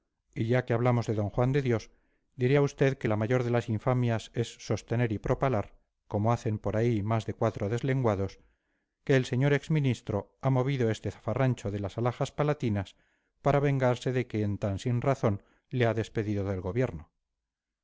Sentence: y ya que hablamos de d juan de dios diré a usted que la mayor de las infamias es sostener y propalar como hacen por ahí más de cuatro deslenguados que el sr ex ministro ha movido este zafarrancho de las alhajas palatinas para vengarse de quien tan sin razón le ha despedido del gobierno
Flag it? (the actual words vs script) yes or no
no